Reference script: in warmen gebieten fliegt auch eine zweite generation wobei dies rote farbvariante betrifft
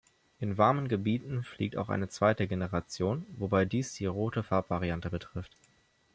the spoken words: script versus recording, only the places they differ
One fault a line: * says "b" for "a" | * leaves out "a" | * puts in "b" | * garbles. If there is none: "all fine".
* puts in "die"